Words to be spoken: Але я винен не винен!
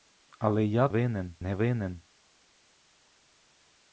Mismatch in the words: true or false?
false